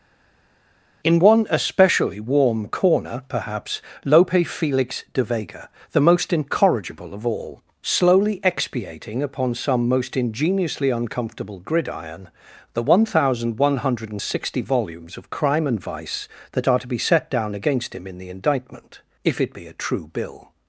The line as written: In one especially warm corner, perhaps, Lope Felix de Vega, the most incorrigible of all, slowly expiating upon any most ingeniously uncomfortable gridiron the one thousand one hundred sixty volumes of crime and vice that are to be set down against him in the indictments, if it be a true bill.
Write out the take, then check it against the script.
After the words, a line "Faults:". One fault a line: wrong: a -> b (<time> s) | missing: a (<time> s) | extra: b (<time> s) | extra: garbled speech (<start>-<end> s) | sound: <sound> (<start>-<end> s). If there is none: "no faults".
In one especially warm corner, perhaps, Lope Felix de Vega, the most incorrigible of all, slowly expiating upon some most ingeniously uncomfortable gridiron the one thousand one hundred sixty volumes of crime and vice that are to be set down against him in the indictment, if it be a true bill.
Faults:
wrong: any -> some (9.6 s)
wrong: indictments -> indictment (18.3 s)